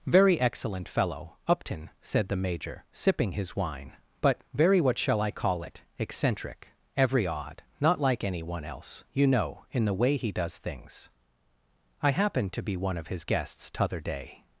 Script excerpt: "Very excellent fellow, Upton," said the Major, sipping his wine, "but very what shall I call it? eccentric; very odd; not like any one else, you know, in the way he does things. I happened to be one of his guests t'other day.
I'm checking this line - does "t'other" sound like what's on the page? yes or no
yes